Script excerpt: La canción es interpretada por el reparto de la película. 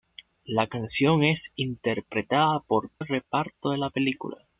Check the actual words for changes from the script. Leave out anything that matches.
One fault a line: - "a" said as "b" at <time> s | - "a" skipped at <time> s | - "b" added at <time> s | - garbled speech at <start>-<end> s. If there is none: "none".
none